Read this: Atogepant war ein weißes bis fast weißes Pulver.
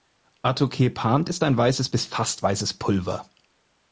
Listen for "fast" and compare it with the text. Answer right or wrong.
right